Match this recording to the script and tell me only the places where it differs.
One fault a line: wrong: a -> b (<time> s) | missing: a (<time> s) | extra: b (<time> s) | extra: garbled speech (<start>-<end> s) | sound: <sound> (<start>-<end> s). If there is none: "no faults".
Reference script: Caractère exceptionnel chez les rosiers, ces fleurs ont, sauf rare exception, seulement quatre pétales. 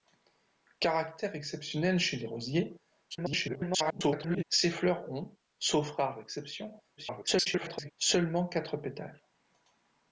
extra: garbled speech (3.1-4.4 s)
extra: garbled speech (7.0-7.9 s)